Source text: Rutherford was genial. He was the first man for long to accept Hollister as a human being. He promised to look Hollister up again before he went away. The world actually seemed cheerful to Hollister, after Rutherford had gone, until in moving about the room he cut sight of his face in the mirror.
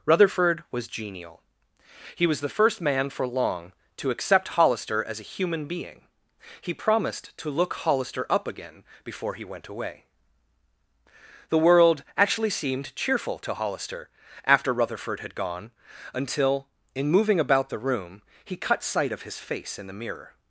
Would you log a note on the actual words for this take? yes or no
no